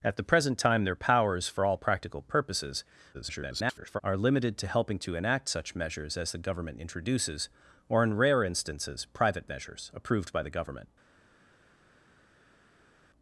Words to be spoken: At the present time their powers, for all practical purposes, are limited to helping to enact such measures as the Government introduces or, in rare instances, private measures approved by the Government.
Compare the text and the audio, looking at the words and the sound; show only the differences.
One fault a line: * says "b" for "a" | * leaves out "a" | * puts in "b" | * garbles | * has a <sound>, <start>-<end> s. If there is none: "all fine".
* garbles